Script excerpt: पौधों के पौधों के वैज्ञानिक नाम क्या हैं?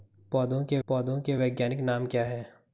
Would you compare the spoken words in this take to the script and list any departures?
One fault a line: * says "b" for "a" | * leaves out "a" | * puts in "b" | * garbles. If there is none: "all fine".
all fine